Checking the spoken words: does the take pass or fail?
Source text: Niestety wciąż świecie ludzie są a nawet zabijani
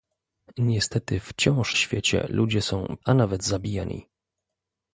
pass